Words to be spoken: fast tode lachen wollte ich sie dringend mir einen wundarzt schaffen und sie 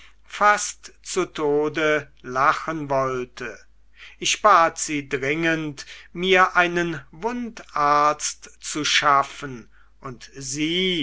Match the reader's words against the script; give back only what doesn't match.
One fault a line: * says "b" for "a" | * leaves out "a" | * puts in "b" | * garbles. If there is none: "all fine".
* puts in "zu"
* puts in "bat"
* puts in "zu"